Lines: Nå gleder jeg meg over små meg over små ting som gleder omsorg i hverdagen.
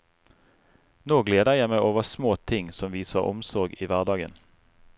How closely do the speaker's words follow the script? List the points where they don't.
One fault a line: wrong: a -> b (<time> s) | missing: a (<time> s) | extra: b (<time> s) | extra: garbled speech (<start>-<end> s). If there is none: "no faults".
missing: meg over små (2.3 s)
wrong: gleder -> viser (3.0 s)